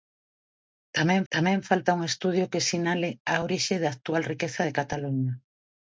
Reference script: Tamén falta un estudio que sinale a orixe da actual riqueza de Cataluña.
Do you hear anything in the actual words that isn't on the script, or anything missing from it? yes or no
yes